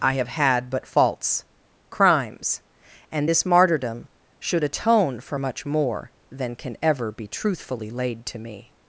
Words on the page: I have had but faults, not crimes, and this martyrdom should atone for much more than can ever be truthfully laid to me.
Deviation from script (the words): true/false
true